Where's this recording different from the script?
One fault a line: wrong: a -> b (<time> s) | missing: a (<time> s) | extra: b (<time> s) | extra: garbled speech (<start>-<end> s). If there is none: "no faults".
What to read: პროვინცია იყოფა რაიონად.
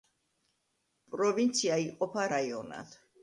no faults